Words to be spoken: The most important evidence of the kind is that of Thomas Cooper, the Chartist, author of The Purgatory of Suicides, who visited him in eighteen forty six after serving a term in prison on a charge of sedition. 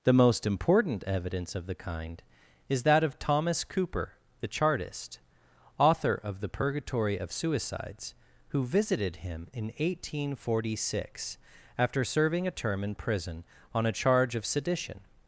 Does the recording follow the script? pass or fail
pass